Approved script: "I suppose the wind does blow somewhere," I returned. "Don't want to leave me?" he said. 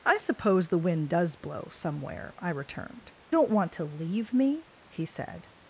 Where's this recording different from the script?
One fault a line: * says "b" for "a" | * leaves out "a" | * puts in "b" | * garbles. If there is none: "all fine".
all fine